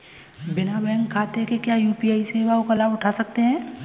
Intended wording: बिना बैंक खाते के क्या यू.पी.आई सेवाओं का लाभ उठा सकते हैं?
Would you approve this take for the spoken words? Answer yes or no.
yes